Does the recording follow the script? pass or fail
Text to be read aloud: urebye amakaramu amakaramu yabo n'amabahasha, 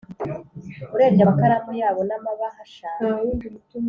fail